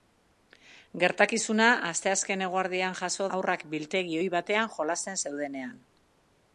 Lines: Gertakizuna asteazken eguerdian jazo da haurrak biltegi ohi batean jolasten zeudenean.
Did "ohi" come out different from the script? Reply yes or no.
no